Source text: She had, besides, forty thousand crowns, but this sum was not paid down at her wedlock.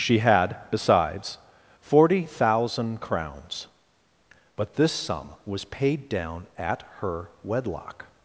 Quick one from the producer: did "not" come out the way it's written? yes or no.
no